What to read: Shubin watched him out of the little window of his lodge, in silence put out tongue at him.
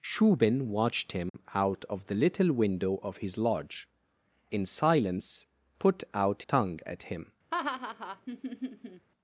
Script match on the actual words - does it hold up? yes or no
yes